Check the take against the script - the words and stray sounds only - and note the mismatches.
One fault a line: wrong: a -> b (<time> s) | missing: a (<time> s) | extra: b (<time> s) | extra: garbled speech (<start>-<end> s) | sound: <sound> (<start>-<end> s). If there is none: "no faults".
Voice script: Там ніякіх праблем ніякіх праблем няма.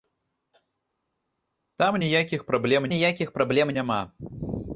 no faults